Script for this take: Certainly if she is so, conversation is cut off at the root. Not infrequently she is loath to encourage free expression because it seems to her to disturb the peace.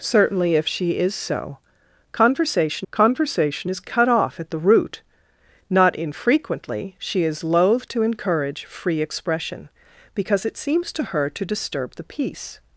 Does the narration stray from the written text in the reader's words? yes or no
yes